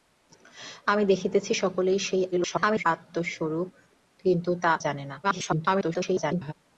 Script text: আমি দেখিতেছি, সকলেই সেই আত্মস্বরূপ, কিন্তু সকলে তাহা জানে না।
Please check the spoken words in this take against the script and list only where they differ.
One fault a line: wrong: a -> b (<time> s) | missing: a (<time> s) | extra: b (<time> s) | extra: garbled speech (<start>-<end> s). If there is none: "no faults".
extra: garbled speech (2.3-2.8 s)
missing: সকলে তাহা (4.5 s)
extra: garbled speech (5.2-6.5 s)